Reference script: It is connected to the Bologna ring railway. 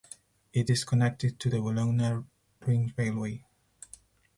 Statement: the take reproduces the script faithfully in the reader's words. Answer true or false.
true